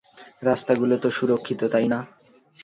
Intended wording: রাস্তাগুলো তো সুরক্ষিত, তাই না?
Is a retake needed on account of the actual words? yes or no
no